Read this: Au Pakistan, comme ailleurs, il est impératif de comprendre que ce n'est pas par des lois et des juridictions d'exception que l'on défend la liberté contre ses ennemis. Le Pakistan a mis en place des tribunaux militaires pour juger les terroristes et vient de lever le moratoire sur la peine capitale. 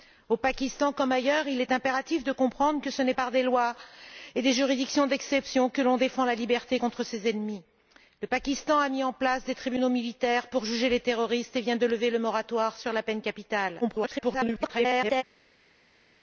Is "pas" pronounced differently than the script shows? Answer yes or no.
yes